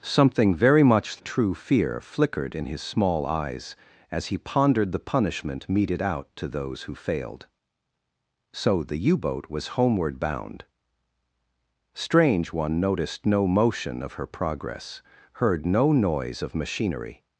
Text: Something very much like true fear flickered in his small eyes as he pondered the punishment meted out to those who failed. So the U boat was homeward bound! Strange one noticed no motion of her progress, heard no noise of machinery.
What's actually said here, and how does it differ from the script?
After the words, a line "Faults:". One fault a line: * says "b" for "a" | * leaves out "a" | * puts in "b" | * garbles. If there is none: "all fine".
Something very much true fear flickered in his small eyes as he pondered the punishment meted out to those who failed. So the U boat was homeward bound! Strange one noticed no motion of her progress, heard no noise of machinery.
Faults:
* leaves out "like"